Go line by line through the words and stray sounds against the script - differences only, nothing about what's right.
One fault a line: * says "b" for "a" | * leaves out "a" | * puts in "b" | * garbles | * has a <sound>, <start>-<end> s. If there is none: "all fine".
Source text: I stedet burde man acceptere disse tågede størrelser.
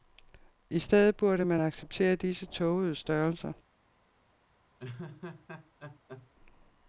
* has a laugh, 4.8-6.3 s